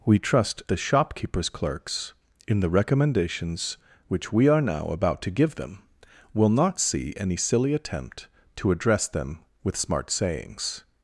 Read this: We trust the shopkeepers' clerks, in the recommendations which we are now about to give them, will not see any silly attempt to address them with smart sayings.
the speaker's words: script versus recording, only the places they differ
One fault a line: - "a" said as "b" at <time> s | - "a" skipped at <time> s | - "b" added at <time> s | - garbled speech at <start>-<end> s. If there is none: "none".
none